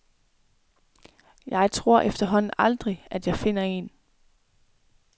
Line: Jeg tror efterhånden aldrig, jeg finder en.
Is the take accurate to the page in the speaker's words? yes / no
no